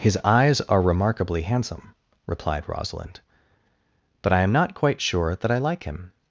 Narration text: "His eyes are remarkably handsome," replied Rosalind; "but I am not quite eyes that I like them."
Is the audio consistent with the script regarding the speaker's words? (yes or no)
no